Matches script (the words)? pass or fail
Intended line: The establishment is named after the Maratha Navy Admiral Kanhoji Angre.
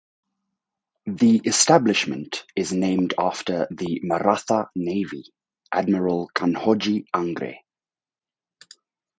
pass